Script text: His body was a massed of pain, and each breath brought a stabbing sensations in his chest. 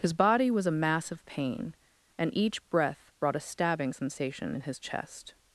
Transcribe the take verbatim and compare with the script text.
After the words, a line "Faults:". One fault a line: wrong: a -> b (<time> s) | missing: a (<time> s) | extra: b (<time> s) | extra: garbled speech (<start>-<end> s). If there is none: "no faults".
His body was a mass of pain, and each breath brought a stabbing sensation in his chest.
Faults:
wrong: massed -> mass (0.7 s)
wrong: sensations -> sensation (3.9 s)